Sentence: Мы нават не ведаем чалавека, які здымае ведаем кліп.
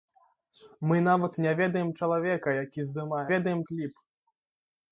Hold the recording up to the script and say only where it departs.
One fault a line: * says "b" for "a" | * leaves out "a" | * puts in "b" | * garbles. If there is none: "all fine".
all fine